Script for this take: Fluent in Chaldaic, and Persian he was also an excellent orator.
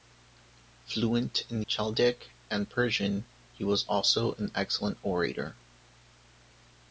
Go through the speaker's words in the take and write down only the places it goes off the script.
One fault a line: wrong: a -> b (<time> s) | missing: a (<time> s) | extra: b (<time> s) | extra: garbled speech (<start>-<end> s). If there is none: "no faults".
no faults